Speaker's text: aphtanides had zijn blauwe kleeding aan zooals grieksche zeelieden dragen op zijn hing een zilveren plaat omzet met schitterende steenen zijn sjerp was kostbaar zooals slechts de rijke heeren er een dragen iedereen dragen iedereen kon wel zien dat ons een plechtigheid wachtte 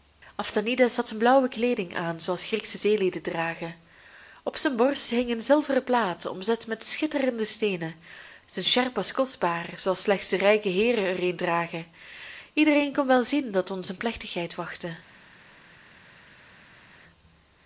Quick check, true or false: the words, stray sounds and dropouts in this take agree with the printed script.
false